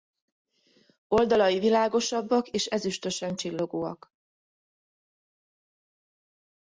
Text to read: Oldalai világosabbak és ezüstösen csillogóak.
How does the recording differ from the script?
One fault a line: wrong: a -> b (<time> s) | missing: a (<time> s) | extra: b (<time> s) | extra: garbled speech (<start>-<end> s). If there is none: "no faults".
no faults